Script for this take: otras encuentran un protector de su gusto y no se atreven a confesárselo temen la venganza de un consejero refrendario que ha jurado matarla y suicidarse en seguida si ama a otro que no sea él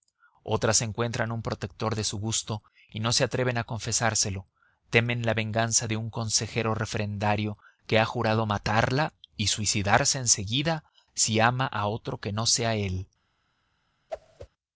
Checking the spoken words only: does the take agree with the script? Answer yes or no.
yes